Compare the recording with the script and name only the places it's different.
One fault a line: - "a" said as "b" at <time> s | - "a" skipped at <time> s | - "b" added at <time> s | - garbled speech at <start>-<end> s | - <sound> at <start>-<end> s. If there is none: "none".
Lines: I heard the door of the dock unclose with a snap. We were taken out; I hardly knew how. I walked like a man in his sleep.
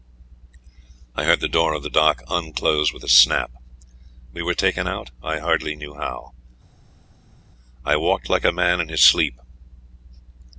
none